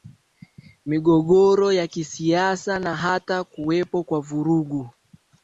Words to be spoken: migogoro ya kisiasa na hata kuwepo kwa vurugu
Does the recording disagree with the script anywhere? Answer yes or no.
no